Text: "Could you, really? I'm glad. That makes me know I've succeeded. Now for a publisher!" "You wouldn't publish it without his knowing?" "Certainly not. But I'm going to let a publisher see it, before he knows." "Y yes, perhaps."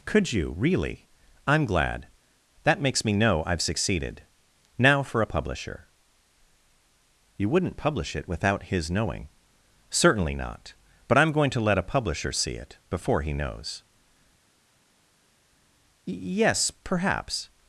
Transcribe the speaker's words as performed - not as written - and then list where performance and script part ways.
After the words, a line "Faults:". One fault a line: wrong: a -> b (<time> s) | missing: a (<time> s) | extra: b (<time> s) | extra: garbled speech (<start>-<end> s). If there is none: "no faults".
"Could you, really? I'm glad. That makes me know I've succeeded. Now for a publisher!" "You wouldn't publish it without his knowing?" "Certainly not. But I'm going to let a publisher see it, before he knows." "Y yes, perhaps."
Faults:
no faults